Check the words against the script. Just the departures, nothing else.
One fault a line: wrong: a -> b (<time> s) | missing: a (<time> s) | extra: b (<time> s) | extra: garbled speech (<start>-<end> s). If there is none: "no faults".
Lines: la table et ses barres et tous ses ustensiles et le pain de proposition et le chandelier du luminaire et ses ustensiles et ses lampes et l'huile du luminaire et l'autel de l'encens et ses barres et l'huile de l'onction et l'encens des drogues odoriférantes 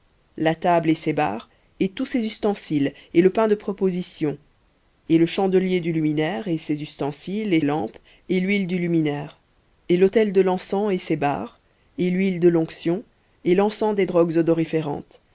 missing: ses (7.6 s)